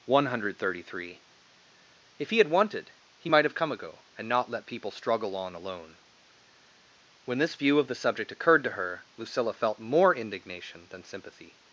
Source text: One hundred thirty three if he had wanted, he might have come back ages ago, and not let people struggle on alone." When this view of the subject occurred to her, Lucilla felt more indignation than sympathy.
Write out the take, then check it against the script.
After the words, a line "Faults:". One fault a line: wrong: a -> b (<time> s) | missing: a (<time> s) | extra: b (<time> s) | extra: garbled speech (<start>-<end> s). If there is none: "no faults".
One hundred thirty three if he had wanted, he might have come ago, and not let people struggle on alone." When this view of the subject occurred to her, Lucilla felt more indignation than sympathy.
Faults:
missing: back ages (3.7 s)